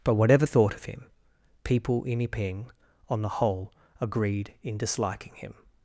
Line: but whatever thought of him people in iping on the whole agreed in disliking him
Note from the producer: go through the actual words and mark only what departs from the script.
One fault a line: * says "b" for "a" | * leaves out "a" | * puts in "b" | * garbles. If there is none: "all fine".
all fine